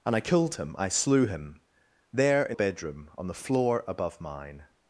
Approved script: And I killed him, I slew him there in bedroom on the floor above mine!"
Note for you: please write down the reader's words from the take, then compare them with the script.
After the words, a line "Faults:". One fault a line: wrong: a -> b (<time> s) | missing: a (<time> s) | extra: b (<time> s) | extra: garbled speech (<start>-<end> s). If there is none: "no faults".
And I killed him, I slew him there in bedroom on the floor above mine!"
Faults:
no faults